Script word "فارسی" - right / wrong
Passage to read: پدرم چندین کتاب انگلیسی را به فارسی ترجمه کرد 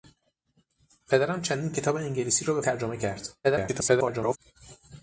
wrong